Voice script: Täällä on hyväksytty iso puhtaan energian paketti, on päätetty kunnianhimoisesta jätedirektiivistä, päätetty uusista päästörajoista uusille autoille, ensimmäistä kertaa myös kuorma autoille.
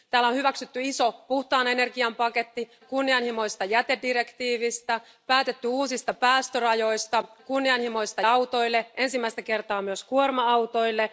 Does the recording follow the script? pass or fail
fail